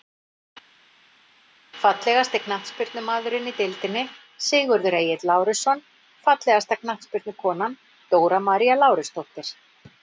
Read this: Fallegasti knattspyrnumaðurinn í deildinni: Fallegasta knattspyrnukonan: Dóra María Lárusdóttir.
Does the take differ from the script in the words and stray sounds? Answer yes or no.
yes